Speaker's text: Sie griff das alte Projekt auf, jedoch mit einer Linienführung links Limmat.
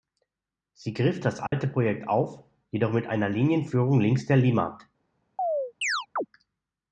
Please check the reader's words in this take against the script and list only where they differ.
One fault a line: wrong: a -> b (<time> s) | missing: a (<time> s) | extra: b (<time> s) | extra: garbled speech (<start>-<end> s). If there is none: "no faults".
extra: der (4.2 s)